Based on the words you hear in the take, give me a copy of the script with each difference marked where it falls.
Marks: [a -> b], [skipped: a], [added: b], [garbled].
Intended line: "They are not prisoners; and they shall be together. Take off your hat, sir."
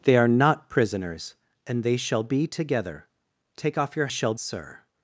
"They are not prisoners; and they shall be together. Take off your [hat, -> shall] sir."